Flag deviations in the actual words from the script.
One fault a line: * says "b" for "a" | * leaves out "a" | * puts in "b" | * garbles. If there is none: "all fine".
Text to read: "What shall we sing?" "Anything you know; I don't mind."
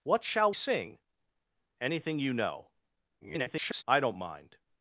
* leaves out "we"
* garbles